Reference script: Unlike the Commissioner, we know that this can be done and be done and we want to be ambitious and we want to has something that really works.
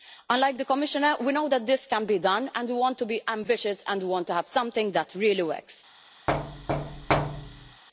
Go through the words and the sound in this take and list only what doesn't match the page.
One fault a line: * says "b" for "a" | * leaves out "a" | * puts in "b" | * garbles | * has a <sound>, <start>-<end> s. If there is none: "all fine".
* leaves out "be done and"
* says "have" for "has"
* has a thud, 6.3-7.8 s